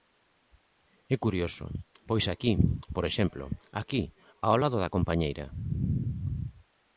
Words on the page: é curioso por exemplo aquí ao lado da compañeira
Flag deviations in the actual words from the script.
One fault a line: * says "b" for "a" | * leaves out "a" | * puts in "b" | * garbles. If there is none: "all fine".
* puts in "pois aquí"